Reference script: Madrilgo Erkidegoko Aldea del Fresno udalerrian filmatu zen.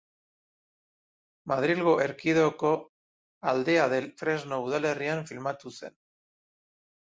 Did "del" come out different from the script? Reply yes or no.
no